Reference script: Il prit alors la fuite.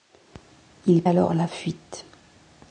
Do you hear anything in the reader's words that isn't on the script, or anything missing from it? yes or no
yes